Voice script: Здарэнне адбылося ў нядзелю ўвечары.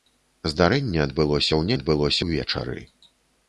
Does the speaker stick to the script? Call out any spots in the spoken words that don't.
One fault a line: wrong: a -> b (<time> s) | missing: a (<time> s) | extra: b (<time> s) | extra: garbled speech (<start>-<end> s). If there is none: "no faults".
wrong: нядзелю -> адбылося (1.8 s)